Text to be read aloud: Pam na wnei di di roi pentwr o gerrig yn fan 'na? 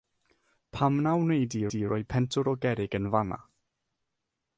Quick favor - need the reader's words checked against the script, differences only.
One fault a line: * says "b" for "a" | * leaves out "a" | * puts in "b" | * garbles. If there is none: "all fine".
all fine